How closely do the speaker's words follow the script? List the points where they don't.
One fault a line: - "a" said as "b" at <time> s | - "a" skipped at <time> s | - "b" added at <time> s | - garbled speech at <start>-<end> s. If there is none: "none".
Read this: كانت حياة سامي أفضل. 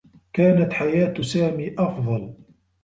none